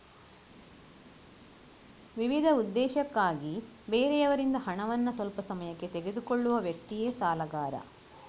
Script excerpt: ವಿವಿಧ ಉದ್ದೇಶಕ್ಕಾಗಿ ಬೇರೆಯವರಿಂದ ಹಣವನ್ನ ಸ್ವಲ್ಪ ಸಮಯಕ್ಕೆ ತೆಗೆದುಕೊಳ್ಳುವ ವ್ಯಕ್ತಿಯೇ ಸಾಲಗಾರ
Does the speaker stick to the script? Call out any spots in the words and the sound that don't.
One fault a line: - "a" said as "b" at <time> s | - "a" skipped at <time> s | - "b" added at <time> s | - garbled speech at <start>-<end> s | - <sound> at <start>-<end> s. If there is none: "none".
none